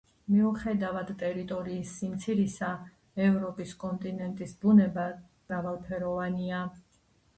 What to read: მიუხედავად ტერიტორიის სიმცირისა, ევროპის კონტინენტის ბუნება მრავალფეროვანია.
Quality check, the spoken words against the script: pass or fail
pass